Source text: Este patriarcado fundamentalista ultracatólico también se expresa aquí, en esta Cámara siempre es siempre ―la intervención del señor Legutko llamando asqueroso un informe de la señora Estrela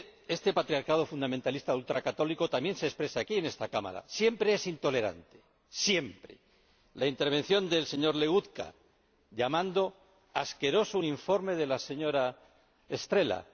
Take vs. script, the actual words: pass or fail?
fail